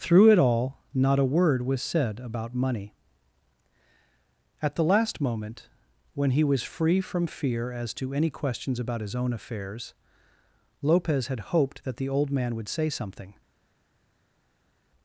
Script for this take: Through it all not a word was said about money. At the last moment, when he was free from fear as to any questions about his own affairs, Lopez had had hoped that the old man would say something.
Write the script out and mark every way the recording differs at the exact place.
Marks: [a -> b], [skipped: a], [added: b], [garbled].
Through it all not a word was said about money. At the last moment, when he was free from fear as to any questions about his own affairs, Lopez had [skipped: had] hoped that the old man would say something.